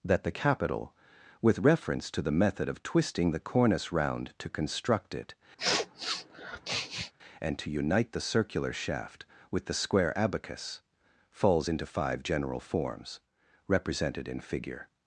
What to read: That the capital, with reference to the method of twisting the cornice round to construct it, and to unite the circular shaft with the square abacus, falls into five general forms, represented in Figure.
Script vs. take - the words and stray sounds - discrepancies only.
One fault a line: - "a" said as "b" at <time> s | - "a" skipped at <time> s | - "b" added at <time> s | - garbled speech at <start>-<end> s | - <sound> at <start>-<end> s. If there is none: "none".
- sniff at 5.6-7.1 s